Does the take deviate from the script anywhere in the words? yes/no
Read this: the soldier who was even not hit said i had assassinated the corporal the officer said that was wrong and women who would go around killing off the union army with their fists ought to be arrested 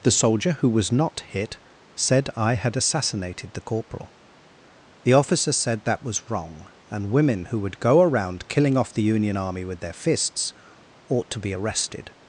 yes